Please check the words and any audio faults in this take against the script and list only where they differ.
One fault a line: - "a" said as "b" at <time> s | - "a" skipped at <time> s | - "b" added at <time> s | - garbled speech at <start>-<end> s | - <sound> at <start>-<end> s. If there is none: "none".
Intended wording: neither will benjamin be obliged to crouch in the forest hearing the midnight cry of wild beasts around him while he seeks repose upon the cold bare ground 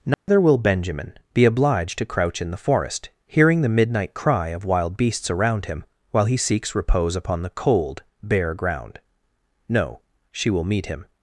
- dropout at 0.1-0.3 s
- "no she will meet him" added at 9.7 s